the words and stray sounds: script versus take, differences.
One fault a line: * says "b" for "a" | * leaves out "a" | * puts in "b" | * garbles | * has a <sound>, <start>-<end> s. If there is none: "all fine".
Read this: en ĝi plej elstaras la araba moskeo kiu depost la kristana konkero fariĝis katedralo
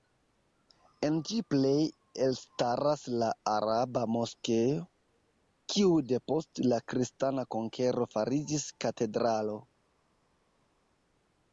all fine